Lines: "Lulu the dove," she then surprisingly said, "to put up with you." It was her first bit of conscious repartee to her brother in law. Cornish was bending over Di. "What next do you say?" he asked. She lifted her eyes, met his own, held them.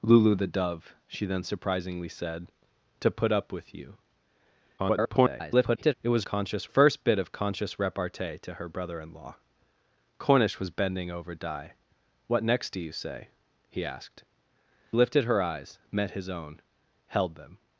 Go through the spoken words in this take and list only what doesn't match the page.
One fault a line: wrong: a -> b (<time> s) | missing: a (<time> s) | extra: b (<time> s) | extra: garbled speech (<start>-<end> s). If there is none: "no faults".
extra: garbled speech (4.8-5.9 s)
wrong: her -> conscious (6.2 s)
missing: She (14.2 s)